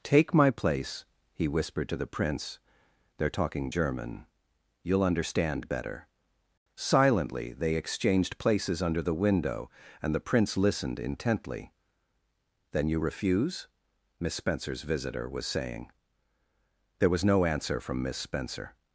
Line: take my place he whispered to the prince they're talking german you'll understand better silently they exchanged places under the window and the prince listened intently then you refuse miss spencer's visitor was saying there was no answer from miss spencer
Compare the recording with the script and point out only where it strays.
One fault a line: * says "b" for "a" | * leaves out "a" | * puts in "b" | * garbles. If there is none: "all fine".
all fine